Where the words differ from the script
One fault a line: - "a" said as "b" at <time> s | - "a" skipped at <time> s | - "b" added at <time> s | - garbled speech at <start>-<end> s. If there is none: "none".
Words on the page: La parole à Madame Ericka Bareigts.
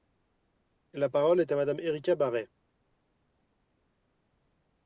- "est" added at 1.4 s